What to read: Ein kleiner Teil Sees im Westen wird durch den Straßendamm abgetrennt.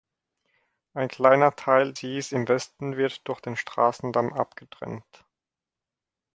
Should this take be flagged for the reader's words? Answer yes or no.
no